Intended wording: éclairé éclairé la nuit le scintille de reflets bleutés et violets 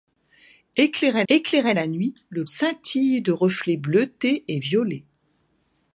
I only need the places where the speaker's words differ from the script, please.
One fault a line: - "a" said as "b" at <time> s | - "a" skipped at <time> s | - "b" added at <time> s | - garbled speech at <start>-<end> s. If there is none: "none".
none